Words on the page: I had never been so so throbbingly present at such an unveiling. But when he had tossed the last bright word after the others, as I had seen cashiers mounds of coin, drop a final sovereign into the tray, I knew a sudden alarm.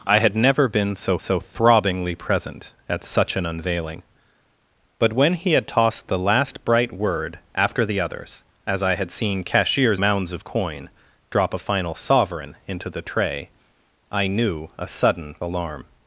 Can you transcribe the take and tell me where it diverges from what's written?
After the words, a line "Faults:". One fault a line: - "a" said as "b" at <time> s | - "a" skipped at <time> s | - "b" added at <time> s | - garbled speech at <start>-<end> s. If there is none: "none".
I had never been so so throbbingly present at such an unveiling. But when he had tossed the last bright word after the others, as I had seen cashiers mounds of coin, drop a final sovereign into the tray, I knew a sudden alarm.
Faults:
none